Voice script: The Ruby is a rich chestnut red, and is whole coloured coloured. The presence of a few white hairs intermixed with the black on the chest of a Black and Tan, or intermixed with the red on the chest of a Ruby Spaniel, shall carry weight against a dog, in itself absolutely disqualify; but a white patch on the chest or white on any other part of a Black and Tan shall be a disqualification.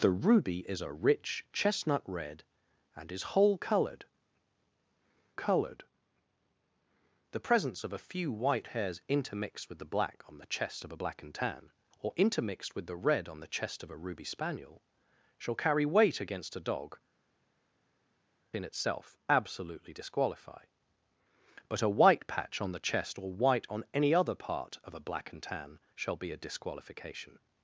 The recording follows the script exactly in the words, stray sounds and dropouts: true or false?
true